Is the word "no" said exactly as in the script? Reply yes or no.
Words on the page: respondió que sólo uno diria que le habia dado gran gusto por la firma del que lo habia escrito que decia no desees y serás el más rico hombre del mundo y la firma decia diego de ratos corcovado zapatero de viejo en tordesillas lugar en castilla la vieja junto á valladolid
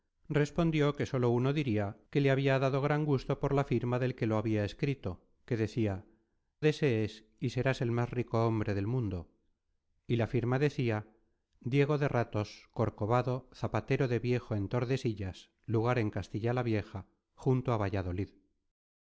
no